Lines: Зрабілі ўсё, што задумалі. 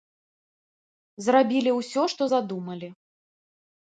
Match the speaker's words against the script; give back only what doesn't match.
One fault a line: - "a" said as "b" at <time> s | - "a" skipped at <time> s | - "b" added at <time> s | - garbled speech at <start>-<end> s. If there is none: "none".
none